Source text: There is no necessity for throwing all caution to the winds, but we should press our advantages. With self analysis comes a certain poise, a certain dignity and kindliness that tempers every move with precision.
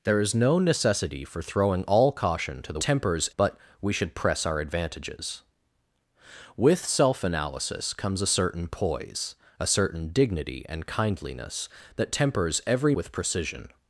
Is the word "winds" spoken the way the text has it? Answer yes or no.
no